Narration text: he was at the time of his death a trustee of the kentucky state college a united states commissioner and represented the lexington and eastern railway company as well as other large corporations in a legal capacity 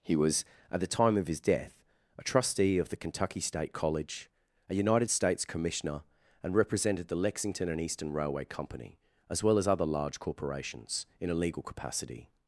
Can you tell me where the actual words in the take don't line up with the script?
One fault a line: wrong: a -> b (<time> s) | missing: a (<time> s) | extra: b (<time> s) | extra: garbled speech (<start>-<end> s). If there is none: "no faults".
no faults